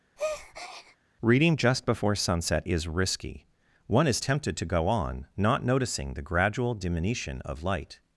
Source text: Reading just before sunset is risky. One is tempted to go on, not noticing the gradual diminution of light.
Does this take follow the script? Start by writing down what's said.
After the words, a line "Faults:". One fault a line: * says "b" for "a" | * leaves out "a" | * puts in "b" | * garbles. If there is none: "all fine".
Reading just before sunset is risky. One is tempted to go on, not noticing the gradual diminution of light.
Faults:
all fine